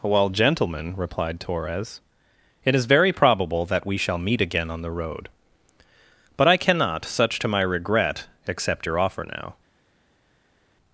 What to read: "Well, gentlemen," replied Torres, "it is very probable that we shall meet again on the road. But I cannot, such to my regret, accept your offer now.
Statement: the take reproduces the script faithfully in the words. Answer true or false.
true